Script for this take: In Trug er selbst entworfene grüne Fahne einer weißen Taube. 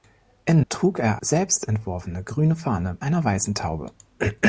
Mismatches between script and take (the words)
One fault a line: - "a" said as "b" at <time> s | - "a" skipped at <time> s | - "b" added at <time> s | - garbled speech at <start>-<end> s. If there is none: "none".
none